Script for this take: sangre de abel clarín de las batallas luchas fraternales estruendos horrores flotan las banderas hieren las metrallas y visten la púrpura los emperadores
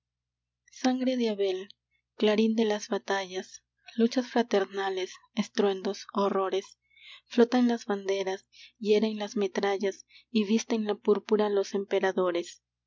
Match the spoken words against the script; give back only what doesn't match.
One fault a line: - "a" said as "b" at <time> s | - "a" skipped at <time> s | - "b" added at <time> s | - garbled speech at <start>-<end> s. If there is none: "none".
none